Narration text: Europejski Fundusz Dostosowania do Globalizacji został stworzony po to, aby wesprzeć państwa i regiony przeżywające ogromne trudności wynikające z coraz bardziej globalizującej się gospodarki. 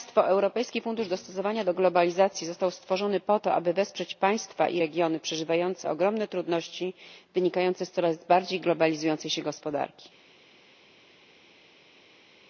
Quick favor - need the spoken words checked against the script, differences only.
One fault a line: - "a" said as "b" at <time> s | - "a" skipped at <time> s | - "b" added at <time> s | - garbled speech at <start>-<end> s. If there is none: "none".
none